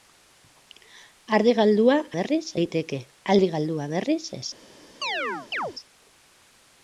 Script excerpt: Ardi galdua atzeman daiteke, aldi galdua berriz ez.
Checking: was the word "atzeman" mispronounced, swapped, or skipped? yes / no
yes